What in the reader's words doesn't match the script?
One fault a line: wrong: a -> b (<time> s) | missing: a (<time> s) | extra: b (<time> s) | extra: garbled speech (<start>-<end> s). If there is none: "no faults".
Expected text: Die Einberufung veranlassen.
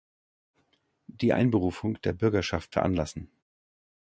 extra: der Bürgerschaft (2.0 s)